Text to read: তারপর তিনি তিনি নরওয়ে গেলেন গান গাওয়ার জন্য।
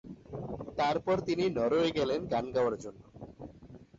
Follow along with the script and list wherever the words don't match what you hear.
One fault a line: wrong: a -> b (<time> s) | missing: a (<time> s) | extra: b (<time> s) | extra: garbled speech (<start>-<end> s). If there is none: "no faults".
missing: তিনি (1.4 s)